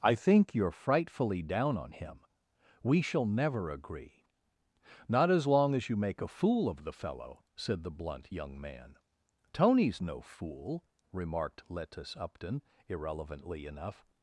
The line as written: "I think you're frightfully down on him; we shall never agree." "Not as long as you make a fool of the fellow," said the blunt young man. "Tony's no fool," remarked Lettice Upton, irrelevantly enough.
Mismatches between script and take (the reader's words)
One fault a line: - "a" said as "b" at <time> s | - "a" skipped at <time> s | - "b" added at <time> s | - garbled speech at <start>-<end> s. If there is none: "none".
none